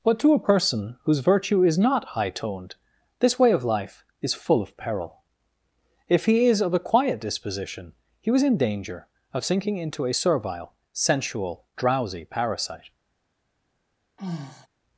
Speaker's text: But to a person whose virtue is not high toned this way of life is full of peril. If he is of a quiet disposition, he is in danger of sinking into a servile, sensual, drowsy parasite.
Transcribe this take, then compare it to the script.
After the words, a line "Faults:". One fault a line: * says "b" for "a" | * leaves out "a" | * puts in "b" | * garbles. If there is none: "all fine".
But to a person whose virtue is not high toned this way of life is full of peril. If he is of a quiet disposition, he was in danger of sinking into a servile, sensual, drowsy parasite.
Faults:
* says "was" for "is"